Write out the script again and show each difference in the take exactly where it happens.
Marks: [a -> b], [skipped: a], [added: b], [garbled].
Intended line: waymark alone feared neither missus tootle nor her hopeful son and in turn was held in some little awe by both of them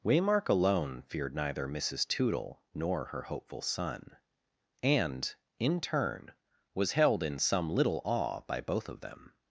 waymark alone feared neither missus tootle nor her hopeful son and in turn was held in some little awe by both of them